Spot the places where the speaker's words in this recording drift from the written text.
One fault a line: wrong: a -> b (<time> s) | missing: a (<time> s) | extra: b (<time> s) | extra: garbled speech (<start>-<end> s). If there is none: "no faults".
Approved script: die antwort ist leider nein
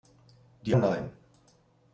missing: antwort ist leider (0.8 s)